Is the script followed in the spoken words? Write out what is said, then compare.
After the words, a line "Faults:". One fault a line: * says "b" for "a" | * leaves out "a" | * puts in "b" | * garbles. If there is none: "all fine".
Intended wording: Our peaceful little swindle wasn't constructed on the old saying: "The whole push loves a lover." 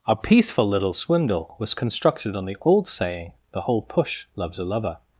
Our peaceful little swindle was constructed on the old saying: "The whole push loves a lover."
Faults:
* says "was" for "wasn't"